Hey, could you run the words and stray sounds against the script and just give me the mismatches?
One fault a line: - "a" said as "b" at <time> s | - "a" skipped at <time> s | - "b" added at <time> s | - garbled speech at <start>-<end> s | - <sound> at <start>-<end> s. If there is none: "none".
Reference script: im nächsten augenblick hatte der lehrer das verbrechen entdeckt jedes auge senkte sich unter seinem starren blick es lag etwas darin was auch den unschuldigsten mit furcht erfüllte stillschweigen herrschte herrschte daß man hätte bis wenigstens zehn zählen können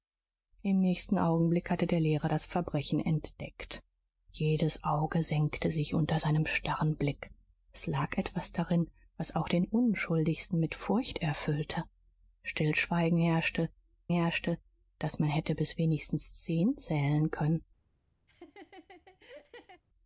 - laugh at 18.3-19.8 s